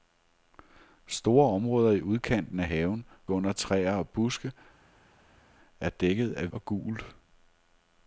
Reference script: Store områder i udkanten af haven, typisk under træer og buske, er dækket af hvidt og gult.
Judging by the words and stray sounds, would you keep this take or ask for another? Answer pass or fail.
fail